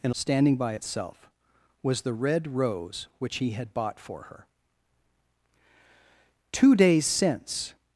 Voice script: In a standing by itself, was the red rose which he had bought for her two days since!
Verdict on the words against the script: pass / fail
pass